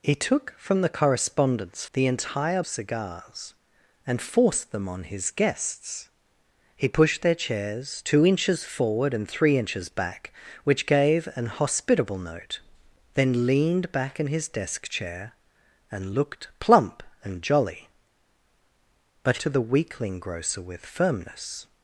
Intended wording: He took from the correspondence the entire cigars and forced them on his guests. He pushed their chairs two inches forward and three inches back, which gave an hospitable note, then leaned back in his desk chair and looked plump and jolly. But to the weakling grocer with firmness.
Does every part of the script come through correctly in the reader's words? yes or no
yes